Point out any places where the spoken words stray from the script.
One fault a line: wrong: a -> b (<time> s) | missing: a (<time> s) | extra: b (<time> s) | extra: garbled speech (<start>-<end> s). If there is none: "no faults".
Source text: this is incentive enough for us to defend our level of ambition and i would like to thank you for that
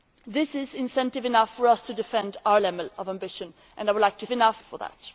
wrong: thank -> enough (4.3 s)